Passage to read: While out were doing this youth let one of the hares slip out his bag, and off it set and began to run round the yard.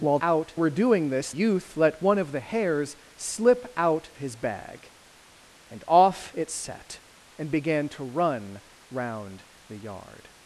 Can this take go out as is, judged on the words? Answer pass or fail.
pass